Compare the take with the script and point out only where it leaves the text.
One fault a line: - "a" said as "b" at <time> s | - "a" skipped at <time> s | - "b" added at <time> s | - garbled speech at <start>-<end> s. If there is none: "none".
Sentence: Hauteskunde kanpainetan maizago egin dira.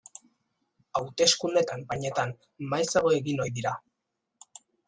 - "ohi" added at 3.4 s